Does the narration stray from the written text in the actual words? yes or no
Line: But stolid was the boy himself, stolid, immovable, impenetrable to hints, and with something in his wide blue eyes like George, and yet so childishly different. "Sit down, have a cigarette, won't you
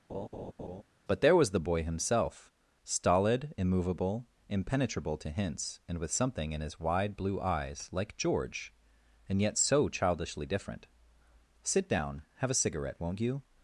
yes